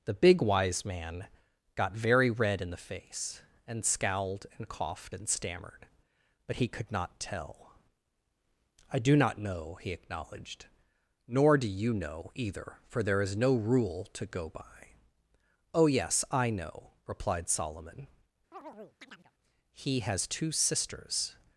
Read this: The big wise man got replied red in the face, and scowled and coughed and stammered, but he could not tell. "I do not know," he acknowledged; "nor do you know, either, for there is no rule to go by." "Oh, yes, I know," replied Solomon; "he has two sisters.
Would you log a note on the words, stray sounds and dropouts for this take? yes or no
yes